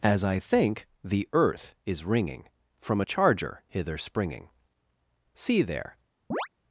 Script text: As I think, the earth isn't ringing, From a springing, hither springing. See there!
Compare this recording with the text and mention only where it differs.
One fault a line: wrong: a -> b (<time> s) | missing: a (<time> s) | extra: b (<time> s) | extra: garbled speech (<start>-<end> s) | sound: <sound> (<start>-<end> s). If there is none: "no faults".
wrong: isn't -> is (1.9 s)
wrong: springing -> charger (3.0 s)
sound: chirp (6.3-6.5 s)